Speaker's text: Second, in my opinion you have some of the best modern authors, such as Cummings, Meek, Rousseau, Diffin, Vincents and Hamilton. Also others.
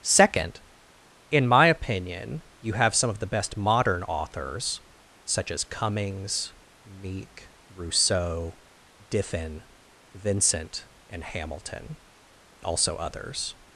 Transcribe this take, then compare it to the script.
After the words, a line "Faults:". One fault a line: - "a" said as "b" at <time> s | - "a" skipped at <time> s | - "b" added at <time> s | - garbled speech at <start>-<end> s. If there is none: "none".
Second, in my opinion you have some of the best modern authors, such as Cummings, Meek, Rousseau, Diffin, Vincent and Hamilton. Also others.
Faults:
- "Vincents" said as "Vincent" at 10.1 s